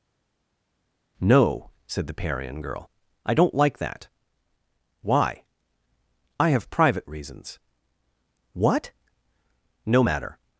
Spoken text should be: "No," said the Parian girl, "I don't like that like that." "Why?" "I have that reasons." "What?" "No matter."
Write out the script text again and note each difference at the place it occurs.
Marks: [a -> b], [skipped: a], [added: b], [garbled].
"No," said the Parian girl, "I don't like that [skipped: like that."] "Why?" "I have [that -> private] reasons." "What?" "No matter."